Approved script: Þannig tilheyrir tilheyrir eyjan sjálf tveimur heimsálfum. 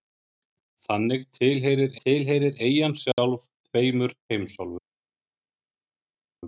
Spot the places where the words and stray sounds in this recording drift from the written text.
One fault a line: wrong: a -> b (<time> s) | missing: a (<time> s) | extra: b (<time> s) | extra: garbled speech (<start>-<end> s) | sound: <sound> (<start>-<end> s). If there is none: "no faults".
no faults